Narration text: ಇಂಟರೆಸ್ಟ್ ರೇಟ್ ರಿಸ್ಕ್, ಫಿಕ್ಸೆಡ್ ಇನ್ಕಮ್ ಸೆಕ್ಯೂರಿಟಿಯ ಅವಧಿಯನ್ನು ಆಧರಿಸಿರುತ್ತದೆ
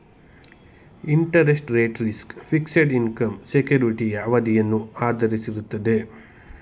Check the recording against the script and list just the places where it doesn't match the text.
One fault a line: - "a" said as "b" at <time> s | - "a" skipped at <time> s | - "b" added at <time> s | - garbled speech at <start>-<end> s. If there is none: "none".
none